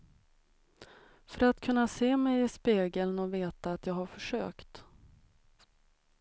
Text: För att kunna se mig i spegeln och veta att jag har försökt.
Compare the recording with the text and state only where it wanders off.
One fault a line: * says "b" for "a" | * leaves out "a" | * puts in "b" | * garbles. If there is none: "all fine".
all fine